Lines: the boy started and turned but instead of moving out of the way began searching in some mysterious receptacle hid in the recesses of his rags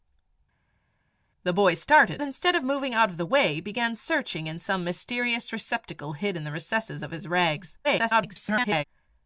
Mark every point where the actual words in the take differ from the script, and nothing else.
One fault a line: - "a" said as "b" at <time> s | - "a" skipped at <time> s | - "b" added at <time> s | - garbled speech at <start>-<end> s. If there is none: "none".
- "and turned but" skipped at 2.2 s
- garbled speech at 7.8-8.8 s